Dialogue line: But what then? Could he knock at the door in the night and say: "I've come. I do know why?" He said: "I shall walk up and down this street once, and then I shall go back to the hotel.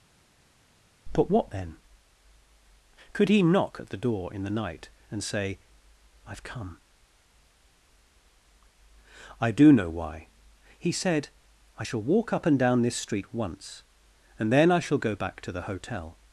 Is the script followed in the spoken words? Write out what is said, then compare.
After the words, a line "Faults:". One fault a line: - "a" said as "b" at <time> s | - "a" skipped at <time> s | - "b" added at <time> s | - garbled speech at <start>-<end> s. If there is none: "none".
But what then? Could he knock at the door in the night and say: "I've come. I do know why?" He said: "I shall walk up and down this street once, and then I shall go back to the hotel.
Faults:
none